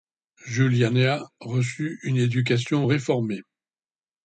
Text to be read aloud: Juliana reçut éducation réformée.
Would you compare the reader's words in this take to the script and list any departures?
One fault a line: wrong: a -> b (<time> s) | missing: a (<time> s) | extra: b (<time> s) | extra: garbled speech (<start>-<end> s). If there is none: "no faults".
extra: une (2.0 s)